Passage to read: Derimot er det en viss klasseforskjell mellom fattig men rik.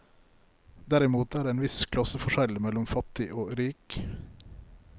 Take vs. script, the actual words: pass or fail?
fail